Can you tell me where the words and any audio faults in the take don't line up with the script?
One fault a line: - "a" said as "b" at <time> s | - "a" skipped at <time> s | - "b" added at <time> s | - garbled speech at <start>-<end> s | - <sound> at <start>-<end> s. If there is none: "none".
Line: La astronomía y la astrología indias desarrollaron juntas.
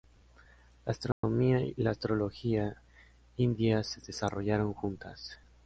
- dropout at 1.1-1.2 s
- "se" added at 3.9 s